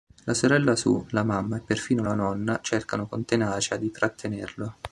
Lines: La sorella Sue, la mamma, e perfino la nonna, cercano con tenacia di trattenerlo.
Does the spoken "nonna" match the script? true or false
true